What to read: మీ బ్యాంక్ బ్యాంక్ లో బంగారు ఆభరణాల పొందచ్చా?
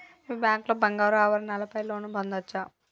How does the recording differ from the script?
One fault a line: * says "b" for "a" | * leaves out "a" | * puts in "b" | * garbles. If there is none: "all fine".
* leaves out "బ్యాంక్"
* puts in "పై లోన్"